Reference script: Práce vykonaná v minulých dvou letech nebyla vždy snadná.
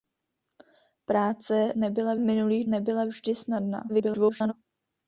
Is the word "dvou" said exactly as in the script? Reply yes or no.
no